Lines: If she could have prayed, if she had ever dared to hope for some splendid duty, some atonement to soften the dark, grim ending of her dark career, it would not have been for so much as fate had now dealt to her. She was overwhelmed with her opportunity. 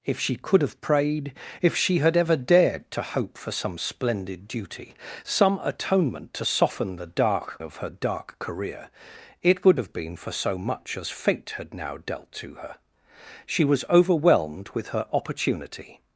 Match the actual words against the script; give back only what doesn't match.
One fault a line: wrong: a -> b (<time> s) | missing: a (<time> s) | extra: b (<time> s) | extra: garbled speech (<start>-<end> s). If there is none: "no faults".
missing: grim ending (7.6 s)
missing: not (9.8 s)